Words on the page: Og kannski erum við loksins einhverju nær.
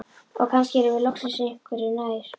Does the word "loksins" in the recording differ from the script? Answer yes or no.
no